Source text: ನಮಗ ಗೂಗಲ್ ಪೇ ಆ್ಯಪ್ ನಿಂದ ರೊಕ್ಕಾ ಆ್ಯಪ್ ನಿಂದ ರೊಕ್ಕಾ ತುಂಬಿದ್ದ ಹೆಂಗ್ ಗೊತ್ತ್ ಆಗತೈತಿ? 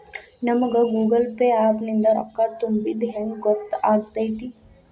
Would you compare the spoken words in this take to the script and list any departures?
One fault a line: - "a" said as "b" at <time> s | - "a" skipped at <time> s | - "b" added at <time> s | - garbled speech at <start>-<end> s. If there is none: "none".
- "ಆ್ಯಪ್ ನಿಂದ ರೊಕ್ಕಾ" skipped at 2.5 s